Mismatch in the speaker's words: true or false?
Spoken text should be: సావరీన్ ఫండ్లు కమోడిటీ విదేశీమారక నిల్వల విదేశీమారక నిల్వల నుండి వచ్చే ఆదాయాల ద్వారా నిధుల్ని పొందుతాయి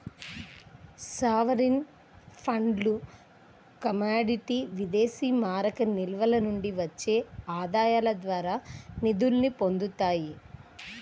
true